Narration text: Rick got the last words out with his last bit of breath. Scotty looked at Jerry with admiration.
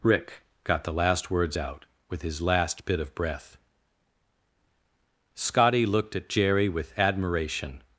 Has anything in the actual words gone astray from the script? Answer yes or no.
no